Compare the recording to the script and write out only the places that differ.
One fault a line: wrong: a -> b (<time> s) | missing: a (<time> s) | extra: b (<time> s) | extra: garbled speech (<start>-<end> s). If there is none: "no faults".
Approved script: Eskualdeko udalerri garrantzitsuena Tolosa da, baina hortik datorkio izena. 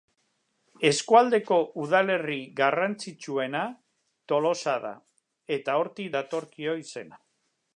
wrong: baina -> eta (5.6 s)